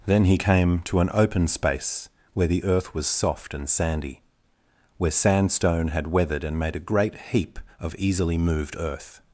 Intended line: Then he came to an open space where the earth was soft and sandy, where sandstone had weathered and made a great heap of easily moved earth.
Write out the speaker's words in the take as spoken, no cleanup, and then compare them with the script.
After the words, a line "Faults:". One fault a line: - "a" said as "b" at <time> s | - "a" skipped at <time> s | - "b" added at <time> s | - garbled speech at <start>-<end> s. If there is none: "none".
Then he came to an open space where the earth was soft and sandy, where sandstone had weathered and made a great heap of easily moved earth.
Faults:
none